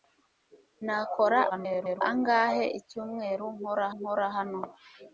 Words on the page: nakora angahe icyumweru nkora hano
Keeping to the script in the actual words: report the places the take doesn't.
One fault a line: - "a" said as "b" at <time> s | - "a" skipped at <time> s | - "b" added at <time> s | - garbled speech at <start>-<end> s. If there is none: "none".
- garbled speech at 1.5-2.0 s
- "nkora" added at 4.0 s